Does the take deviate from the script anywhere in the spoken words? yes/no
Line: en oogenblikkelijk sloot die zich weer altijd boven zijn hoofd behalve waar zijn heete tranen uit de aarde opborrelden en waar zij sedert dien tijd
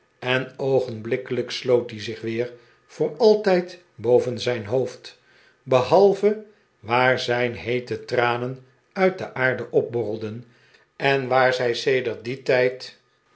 yes